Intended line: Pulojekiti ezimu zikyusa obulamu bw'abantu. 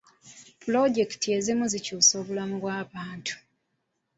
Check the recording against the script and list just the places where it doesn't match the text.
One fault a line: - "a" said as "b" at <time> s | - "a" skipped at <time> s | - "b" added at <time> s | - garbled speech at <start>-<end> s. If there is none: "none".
none